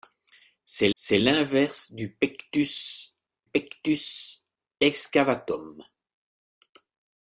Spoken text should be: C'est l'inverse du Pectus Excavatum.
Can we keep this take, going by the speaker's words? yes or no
no